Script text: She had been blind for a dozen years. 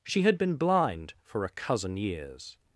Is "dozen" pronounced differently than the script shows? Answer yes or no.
yes